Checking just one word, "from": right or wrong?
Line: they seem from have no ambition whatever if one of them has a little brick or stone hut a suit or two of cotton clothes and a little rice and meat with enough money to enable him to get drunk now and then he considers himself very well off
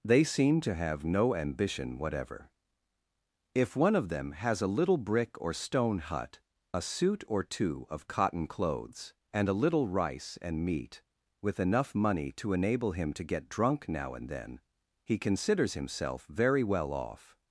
wrong